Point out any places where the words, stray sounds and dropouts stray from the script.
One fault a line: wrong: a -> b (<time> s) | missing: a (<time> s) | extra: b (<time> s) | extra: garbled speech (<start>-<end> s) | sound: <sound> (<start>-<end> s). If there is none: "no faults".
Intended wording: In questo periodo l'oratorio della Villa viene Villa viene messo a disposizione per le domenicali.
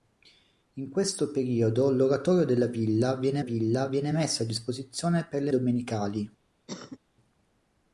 sound: cough (6.7-7.0 s)